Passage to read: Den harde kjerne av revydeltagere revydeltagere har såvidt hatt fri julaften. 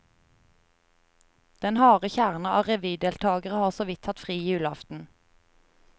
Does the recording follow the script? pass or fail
fail